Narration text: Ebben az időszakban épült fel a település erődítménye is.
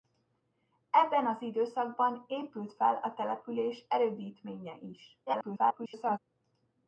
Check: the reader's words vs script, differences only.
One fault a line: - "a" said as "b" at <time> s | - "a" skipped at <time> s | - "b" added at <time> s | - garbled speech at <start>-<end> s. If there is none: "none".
- garbled speech at 5.3-6.2 s